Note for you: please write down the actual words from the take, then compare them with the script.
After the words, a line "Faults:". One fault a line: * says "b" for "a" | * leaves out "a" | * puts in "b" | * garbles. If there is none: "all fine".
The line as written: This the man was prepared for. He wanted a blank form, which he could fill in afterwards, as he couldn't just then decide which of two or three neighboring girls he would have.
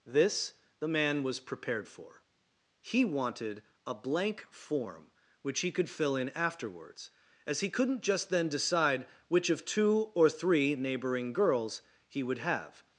This the man was prepared for. He wanted a blank form, which he could fill in afterwards, as he couldn't just then decide which of two or three neighboring girls he would have.
Faults:
all fine